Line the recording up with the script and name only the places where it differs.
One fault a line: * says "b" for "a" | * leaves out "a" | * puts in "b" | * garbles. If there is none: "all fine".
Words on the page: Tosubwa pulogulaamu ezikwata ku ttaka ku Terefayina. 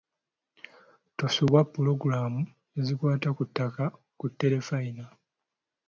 all fine